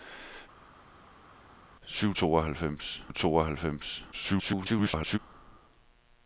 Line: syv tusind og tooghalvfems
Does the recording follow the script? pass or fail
fail